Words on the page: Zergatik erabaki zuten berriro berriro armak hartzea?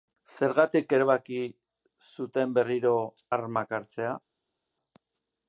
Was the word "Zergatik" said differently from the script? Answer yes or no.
no